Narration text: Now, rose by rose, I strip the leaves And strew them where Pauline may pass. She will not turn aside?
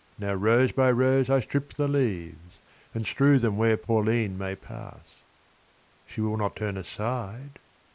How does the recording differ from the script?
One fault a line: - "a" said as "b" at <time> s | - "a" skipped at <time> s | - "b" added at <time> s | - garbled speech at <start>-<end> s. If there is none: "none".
none